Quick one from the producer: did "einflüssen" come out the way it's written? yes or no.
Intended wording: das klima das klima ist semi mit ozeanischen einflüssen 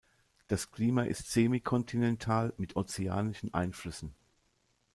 yes